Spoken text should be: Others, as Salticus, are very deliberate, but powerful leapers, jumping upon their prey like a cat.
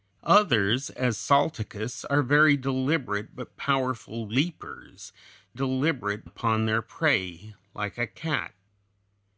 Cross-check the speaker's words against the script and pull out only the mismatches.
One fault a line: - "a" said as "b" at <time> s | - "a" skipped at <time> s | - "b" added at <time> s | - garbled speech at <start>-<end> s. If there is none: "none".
- "jumping" said as "deliberate" at 5.5 s